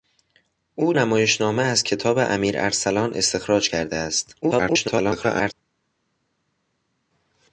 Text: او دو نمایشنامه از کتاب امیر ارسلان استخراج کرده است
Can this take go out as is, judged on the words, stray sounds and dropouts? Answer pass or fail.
fail